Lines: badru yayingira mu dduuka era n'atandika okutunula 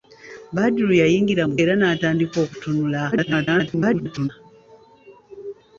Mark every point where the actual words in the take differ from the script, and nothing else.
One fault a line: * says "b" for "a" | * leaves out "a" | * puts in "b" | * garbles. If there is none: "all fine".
* leaves out "dduuka"
* garbles